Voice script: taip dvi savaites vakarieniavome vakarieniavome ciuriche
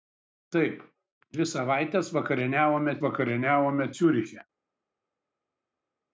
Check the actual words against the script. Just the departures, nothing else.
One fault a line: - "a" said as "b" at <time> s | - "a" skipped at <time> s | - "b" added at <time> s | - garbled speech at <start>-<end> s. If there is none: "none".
none